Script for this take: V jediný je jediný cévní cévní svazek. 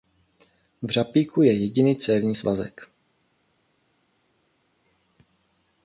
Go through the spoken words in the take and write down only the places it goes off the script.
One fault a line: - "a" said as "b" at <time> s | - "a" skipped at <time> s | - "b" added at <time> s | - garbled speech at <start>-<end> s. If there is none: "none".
- "jediný" said as "řapíku" at 0.9 s
- "cévní" skipped at 2.4 s